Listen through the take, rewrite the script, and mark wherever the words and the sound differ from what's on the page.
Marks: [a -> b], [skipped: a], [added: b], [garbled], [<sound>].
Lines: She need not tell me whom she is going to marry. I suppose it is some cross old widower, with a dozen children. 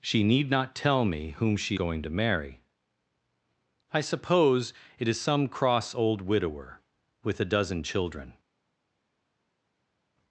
She need not tell me whom she [skipped: is] going to marry. I suppose it is some cross old widower, with a dozen children.